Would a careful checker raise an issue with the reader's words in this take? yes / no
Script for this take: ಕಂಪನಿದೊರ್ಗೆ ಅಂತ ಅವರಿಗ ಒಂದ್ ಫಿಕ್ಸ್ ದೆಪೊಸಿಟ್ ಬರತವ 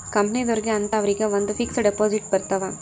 no